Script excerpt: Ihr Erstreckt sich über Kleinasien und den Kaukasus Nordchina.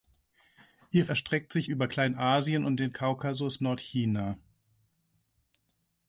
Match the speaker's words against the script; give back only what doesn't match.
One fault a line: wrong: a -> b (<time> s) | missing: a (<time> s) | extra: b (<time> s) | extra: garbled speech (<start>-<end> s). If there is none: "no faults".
no faults